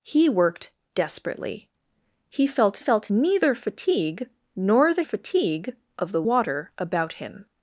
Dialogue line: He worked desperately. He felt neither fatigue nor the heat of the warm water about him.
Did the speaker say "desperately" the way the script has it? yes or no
yes